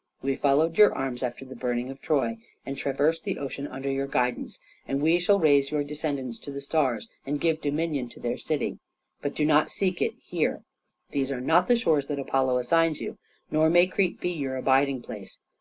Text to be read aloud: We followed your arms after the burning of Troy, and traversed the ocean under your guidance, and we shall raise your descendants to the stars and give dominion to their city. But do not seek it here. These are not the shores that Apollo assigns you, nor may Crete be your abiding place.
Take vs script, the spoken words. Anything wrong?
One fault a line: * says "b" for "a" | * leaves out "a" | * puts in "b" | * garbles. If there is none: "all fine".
all fine